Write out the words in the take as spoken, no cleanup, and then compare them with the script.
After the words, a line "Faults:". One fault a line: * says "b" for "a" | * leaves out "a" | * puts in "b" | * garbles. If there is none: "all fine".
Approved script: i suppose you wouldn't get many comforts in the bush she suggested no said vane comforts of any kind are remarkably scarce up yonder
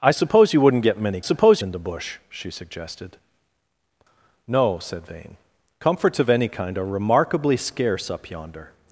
i suppose you wouldn't get many suppose in the bush she suggested no said vane comforts of any kind are remarkably scarce up yonder
Faults:
* says "suppose" for "comforts"